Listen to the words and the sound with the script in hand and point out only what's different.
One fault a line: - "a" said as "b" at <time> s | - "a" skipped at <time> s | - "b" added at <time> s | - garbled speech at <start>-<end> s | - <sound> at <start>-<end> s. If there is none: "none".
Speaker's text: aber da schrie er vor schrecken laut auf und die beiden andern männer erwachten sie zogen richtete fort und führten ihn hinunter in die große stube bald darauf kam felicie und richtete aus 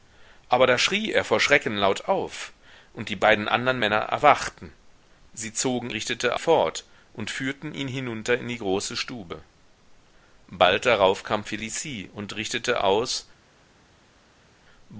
none